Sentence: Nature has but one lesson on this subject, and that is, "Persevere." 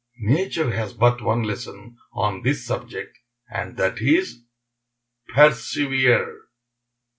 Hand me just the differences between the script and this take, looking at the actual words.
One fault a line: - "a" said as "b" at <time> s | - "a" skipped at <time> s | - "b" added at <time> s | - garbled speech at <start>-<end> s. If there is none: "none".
none